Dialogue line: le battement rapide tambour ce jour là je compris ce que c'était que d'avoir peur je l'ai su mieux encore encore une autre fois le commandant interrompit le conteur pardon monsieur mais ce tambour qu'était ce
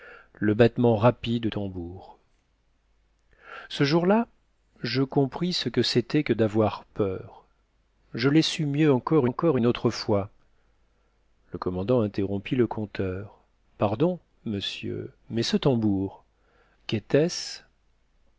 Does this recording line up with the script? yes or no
yes